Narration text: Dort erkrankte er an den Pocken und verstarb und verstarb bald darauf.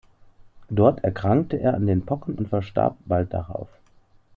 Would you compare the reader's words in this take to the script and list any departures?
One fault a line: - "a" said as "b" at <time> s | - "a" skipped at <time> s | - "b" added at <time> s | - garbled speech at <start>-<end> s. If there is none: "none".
- "und verstarb" skipped at 3.0 s